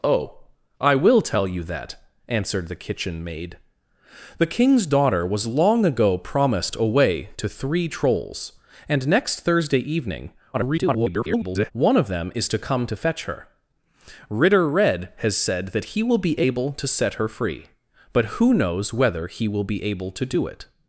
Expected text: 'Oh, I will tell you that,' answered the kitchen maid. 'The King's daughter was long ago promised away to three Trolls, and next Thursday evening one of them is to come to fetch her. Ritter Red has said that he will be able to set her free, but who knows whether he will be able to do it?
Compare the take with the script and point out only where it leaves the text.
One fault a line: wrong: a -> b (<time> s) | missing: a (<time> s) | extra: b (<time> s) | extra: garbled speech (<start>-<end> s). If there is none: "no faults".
extra: garbled speech (10.5-11.7 s)